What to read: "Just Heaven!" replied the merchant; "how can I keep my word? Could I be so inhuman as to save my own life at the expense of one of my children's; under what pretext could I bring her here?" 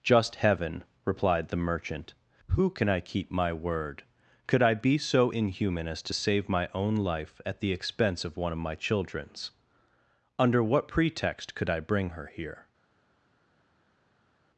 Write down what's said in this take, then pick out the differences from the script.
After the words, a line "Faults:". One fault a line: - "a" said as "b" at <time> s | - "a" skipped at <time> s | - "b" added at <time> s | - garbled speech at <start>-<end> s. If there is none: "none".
"Just Heaven!" replied the merchant; "who can I keep my word? Could I be so inhuman as to save my own life at the expense of one of my children's; under what pretext could I bring her here?"
Faults:
- "how" said as "who" at 2.5 s